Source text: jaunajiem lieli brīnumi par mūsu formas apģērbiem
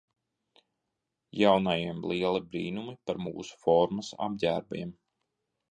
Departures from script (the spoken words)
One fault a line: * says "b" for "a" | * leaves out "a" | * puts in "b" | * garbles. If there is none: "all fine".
all fine